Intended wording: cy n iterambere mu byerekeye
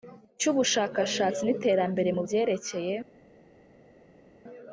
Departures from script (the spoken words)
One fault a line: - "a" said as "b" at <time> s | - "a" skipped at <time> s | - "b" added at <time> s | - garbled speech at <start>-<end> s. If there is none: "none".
- "ubushakashatsi" added at 0.5 s